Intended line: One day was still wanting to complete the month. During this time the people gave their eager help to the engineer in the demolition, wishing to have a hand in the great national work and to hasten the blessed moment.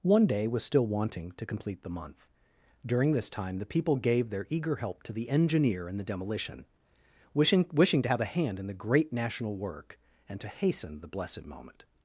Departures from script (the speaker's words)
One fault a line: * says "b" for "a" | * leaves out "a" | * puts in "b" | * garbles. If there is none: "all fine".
* puts in "wishing"